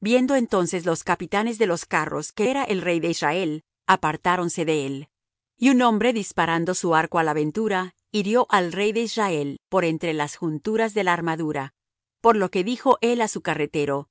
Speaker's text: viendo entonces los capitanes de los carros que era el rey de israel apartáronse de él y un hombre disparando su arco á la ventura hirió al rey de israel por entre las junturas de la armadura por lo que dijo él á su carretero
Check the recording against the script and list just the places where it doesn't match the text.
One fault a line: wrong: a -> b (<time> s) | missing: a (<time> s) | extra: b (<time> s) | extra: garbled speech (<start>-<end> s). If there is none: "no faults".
no faults